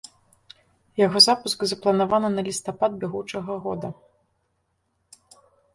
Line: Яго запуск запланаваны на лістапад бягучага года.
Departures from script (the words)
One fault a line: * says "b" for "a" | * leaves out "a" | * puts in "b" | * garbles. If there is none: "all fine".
all fine